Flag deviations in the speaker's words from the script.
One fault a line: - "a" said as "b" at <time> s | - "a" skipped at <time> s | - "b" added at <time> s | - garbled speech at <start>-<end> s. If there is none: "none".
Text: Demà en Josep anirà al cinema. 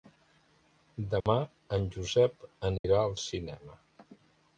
none